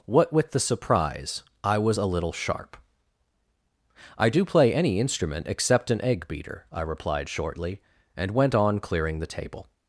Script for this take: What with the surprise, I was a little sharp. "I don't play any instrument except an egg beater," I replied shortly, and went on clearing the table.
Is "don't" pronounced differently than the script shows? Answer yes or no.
yes